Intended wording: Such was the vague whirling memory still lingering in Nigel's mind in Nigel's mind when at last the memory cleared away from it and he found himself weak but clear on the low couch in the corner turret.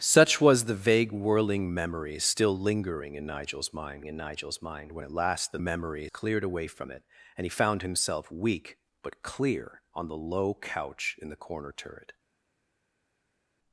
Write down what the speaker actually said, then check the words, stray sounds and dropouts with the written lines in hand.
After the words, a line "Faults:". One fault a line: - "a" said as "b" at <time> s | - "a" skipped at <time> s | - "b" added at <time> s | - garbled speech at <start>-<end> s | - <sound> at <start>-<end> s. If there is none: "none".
Such was the vague whirling memory still lingering in Nigel's mind in Nigel's mind when at last the memory cleared away from it and he found himself weak but clear on the low couch in the corner turret.
Faults:
none